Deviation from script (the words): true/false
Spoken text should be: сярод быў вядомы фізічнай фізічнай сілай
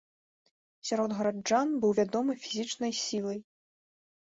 true